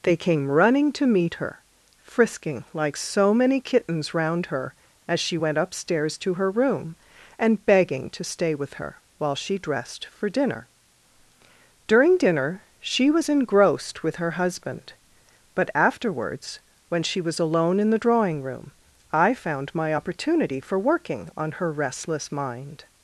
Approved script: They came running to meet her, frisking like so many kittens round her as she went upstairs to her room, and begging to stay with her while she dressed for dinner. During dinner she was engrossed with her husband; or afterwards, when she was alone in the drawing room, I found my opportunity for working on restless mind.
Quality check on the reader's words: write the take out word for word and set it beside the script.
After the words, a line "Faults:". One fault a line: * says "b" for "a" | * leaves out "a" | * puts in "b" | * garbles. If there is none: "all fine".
They came running to meet her, frisking like so many kittens round her as she went upstairs to her room, and begging to stay with her while she dressed for dinner. During dinner she was engrossed with her husband; but afterwards, when she was alone in the drawing room, I found my opportunity for working on her restless mind.
Faults:
* says "but" for "or"
* puts in "her"